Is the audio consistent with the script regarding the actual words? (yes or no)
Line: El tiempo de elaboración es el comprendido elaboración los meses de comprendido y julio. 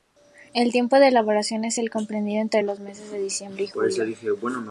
no